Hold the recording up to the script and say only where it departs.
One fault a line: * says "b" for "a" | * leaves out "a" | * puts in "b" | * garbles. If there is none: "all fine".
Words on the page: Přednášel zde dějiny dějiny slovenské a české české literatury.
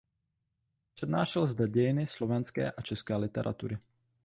* leaves out "dějiny"
* leaves out "české"